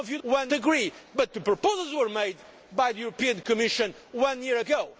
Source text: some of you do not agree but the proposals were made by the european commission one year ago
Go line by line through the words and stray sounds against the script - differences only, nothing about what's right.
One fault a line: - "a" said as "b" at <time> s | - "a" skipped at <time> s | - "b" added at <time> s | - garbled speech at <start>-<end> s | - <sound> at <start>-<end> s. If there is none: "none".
- "not" said as "one" at 0.2 s